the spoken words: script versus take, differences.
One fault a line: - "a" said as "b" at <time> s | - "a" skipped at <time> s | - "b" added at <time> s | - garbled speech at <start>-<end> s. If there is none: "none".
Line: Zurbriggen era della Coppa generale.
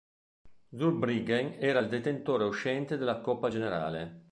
- "il detentore uscente" added at 1.8 s